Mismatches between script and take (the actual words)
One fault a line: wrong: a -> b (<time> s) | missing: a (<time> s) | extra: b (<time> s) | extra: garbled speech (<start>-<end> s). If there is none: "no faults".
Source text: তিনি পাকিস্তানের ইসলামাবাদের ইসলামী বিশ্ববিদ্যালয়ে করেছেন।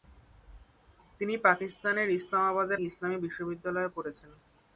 no faults